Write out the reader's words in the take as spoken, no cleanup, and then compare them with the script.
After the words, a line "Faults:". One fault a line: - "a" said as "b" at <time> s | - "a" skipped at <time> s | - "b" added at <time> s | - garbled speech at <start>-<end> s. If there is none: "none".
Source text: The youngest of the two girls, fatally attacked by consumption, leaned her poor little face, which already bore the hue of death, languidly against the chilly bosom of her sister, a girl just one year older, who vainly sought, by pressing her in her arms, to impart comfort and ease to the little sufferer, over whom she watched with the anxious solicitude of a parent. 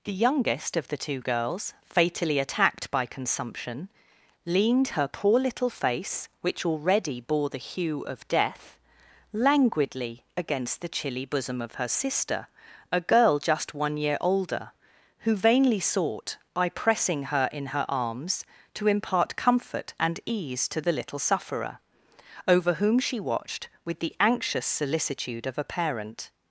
The youngest of the two girls, fatally attacked by consumption, leaned her poor little face, which already bore the hue of death, languidly against the chilly bosom of her sister, a girl just one year older, who vainly sought, by pressing her in her arms, to impart comfort and ease to the little sufferer, over whom she watched with the anxious solicitude of a parent.
Faults:
none